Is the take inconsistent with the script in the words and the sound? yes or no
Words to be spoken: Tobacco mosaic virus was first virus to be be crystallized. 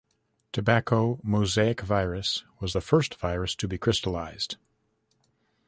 yes